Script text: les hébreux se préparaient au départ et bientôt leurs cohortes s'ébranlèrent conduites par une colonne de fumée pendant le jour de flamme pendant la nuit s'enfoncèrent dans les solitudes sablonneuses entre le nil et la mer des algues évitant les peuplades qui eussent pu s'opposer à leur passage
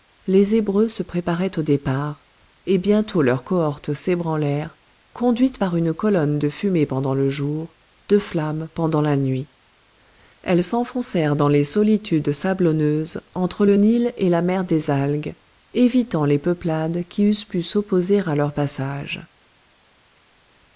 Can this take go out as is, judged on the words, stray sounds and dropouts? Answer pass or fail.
fail